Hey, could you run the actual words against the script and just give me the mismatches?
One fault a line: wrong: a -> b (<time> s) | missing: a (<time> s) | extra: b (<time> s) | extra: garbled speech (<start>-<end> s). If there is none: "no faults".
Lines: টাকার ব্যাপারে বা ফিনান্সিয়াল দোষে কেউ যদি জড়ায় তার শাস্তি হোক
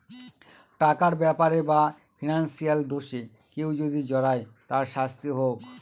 no faults